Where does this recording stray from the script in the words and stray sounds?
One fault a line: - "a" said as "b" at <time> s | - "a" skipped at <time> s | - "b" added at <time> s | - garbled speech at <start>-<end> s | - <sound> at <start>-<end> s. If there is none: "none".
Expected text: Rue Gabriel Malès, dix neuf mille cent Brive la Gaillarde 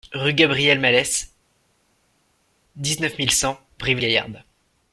- "la" skipped at 4.0 s